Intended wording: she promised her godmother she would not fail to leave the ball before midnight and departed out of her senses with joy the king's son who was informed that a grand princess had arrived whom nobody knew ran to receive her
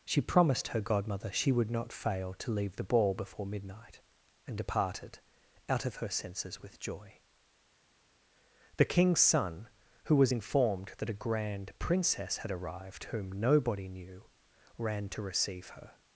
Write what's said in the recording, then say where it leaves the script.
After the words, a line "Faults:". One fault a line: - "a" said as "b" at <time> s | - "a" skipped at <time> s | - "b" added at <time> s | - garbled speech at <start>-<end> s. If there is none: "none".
she promised her godmother she would not fail to leave the ball before midnight and departed out of her senses with joy the king's son who was informed that a grand princess had arrived whom nobody knew ran to receive her
Faults:
none